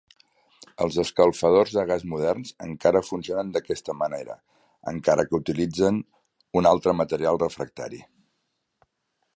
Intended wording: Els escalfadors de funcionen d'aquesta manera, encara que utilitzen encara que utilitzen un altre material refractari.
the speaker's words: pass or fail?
fail